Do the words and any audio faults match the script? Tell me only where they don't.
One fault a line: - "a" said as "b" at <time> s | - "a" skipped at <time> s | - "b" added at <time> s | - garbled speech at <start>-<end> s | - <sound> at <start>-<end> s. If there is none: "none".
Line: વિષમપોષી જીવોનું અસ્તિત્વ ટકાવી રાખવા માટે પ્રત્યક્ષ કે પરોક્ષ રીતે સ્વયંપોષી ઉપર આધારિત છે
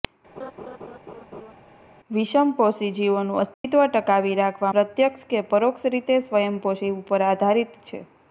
- laugh at 0.4-1.5 s
- dropout at 3.5-3.6 s
- "માટે" skipped at 4.7 s